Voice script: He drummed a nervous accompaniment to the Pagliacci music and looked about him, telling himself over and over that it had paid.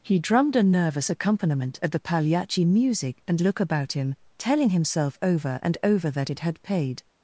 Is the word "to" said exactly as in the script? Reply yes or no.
no